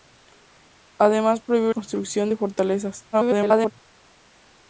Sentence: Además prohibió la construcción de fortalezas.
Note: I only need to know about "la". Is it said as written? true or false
false